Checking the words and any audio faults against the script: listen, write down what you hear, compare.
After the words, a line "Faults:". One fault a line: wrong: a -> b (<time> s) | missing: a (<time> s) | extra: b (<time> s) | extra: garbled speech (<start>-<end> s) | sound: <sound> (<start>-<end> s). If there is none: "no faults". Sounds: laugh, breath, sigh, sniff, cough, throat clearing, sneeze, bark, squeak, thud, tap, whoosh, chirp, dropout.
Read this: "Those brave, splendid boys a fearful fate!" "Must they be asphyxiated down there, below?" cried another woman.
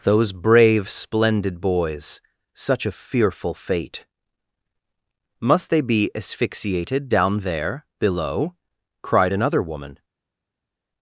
"Those brave, splendid boys such a fearful fate!" "Must they be asphyxiated down there, below?" cried another woman.
Faults:
extra: such (2.5 s)